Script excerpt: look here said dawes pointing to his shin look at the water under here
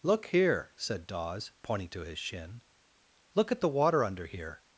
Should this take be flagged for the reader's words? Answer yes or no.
no